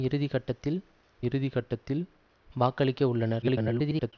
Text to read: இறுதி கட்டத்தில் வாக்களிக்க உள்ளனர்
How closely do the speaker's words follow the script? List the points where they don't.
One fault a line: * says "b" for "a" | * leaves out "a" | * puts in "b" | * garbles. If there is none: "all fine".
* puts in "இறுதி கட்டத்தில்"
* garbles